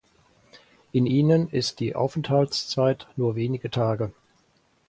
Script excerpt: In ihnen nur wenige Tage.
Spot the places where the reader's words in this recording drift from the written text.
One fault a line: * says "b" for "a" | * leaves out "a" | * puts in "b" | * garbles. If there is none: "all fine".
* puts in "ist die Aufenthaltszeit"